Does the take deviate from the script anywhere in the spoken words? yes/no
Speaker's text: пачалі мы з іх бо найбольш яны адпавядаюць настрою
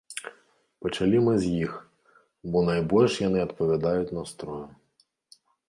no